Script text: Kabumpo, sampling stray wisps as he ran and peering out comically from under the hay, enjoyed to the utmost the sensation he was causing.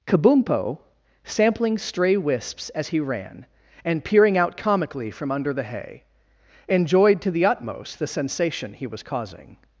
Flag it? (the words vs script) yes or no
no